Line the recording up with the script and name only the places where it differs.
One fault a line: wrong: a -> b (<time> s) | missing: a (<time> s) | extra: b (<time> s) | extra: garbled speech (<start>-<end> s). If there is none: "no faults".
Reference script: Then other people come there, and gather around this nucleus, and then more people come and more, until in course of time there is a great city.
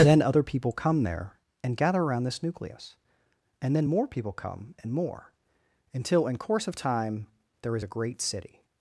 no faults